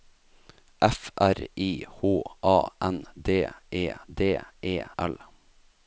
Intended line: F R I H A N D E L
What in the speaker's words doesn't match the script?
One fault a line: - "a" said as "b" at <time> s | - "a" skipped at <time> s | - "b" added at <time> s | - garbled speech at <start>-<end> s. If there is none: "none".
- "D E" added at 4.1 s